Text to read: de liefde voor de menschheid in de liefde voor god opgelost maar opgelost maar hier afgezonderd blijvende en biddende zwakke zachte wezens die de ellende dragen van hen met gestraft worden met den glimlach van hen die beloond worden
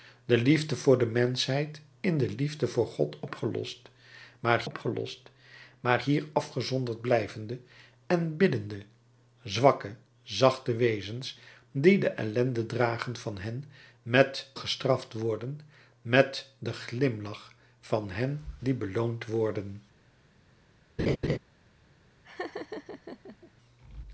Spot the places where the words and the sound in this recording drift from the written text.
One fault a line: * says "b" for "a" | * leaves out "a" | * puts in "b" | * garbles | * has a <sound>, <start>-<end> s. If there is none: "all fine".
* has a laugh, 21.0-21.4 s
* has a laugh, 22.2-23.5 s